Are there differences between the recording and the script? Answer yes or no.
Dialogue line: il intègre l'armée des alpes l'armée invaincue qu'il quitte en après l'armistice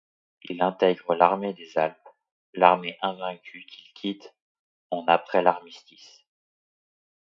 no